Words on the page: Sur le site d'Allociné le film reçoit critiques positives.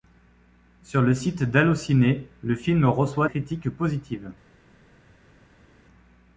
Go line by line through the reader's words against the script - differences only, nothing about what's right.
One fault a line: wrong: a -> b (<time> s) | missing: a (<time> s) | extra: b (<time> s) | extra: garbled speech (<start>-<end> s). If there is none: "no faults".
no faults